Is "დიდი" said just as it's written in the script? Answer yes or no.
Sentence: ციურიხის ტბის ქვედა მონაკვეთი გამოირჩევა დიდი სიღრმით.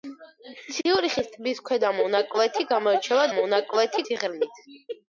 no